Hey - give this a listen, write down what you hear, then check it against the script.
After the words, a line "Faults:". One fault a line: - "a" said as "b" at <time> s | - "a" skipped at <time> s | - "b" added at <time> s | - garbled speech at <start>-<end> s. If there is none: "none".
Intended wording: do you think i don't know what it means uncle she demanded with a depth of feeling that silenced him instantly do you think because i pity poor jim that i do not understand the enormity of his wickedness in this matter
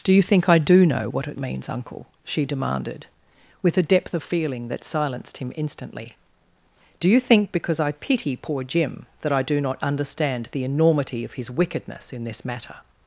do you think i do know what it means uncle she demanded with a depth of feeling that silenced him instantly do you think because i pity poor jim that i do not understand the enormity of his wickedness in this matter
Faults:
- "don't" said as "do" at 0.6 s